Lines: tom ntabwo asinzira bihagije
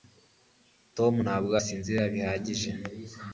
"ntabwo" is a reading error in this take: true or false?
false